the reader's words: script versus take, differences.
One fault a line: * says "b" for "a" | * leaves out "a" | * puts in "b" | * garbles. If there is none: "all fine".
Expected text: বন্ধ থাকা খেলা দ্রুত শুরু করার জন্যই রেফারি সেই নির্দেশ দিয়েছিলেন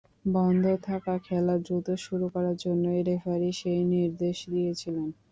all fine